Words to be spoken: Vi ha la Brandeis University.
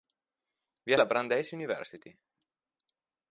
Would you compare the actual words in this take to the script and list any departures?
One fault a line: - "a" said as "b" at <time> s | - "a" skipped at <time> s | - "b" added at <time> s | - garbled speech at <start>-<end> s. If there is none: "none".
none